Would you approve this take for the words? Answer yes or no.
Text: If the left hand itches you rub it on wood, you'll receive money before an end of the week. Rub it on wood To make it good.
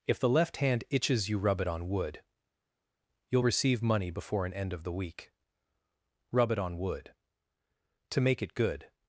yes